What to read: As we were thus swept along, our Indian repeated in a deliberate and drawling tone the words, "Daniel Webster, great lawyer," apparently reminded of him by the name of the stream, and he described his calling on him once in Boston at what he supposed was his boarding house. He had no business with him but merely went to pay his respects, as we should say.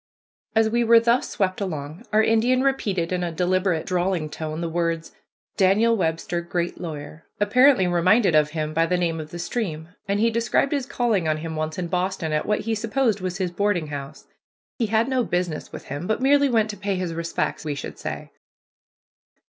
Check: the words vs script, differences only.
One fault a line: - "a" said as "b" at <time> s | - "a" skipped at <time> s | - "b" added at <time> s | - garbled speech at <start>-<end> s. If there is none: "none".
- "and" skipped at 3.9 s
- "as" skipped at 17.6 s